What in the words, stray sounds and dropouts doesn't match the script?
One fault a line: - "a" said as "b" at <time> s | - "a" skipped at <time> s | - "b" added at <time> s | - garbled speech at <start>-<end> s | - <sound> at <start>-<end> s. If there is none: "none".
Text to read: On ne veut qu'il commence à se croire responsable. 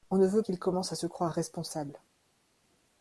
none